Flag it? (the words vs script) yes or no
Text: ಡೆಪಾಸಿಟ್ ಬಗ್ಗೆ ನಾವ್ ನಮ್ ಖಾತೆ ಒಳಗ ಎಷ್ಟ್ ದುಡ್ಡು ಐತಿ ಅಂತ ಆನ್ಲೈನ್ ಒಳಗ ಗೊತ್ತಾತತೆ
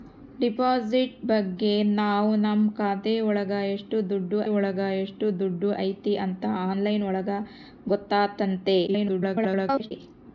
yes